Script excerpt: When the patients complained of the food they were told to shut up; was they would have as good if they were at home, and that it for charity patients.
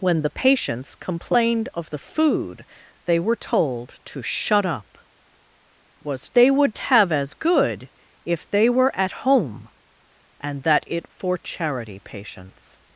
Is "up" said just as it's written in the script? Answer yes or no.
yes